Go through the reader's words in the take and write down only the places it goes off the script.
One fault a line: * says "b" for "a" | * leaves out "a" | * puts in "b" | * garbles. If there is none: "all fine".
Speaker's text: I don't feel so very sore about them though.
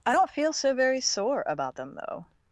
all fine